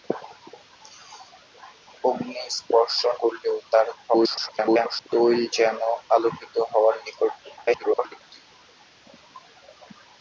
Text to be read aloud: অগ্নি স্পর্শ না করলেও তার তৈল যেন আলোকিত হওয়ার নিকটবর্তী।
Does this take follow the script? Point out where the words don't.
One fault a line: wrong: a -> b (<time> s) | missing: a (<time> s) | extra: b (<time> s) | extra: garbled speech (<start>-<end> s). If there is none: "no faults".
missing: না (3.0 s)
extra: garbled speech (4.1-5.1 s)
extra: garbled speech (7.6-8.2 s)